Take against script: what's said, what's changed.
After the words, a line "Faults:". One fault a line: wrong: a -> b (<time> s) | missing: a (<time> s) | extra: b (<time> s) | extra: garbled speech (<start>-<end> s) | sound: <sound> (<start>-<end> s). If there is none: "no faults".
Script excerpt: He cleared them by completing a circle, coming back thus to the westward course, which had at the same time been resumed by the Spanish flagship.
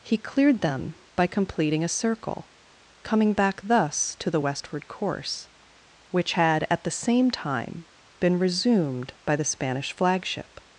He cleared them by completing a circle, coming back thus to the westward course, which had at the same time been resumed by the Spanish flagship.
Faults:
no faults